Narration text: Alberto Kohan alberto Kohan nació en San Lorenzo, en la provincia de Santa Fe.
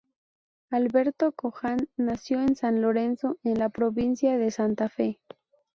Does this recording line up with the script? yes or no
no